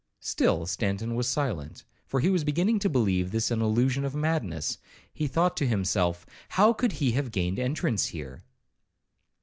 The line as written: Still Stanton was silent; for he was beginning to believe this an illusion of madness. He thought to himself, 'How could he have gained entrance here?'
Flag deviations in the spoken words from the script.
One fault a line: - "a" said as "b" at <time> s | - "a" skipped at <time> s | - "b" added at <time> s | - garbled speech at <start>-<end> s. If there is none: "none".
none